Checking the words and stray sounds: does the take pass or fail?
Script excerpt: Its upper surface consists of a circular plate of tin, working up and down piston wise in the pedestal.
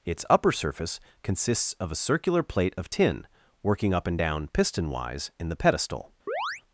fail